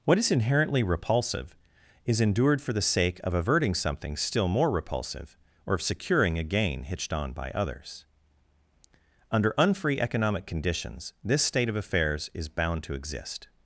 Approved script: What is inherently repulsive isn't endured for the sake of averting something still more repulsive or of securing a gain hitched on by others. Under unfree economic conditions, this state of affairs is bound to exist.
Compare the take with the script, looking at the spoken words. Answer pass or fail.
fail